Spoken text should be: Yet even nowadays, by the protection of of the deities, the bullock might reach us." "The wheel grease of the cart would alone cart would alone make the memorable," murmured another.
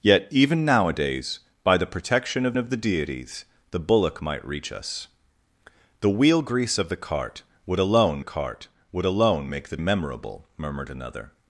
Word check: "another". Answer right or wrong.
right